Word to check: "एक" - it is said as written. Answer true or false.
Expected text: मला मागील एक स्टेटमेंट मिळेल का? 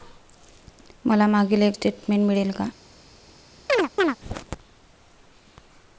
true